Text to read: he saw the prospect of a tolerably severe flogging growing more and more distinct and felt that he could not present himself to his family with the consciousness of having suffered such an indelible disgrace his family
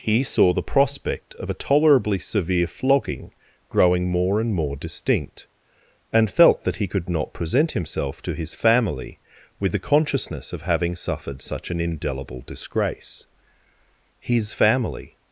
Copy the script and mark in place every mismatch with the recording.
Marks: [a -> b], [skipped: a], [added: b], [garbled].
he saw the prospect of a tolerably severe flogging growing more and more distinct and felt that he could not present himself to his family with the consciousness of having suffered such an indelible disgrace his family